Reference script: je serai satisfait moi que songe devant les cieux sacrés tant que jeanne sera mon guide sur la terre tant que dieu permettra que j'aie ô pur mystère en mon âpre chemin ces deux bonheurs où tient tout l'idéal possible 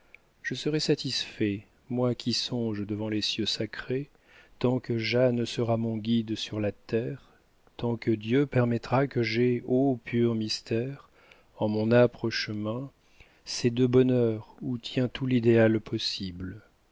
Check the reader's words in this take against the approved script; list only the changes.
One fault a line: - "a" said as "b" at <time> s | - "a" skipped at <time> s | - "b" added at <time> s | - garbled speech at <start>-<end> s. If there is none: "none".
- "que" said as "qui" at 2.1 s